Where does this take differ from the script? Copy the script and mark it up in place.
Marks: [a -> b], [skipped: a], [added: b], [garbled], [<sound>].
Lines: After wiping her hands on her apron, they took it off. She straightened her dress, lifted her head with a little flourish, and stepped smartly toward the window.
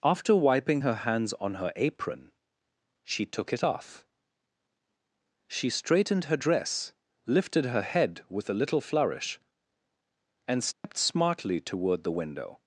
After wiping her hands on her apron, [they -> she] took it off. She straightened her dress, lifted her head with a little flourish, and stepped [dropout] smartly toward the window.